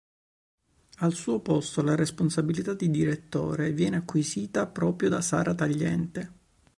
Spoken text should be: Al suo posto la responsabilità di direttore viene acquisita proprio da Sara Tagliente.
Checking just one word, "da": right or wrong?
right